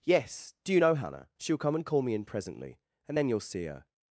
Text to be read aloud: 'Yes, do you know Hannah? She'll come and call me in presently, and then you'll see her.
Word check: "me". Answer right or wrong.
right